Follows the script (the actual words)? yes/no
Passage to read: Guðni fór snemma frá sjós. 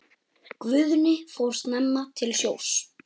no